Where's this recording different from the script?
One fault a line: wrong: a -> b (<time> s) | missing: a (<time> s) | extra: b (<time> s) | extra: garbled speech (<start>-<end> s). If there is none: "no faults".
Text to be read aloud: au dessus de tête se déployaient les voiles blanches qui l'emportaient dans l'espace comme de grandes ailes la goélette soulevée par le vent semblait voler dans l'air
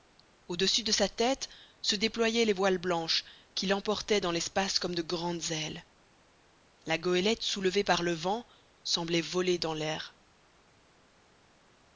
extra: sa (0.9 s)